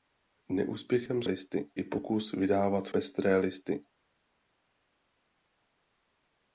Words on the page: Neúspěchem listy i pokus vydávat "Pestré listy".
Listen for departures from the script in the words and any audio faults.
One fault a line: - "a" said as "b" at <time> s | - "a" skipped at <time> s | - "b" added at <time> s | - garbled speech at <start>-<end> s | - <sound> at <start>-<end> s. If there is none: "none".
none